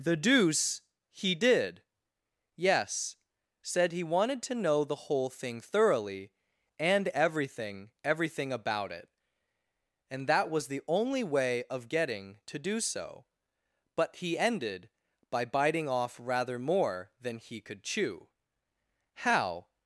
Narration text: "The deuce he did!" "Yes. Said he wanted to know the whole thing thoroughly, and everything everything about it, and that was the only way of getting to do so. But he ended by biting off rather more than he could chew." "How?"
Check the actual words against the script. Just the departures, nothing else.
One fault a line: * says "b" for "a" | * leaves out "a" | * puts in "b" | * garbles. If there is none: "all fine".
all fine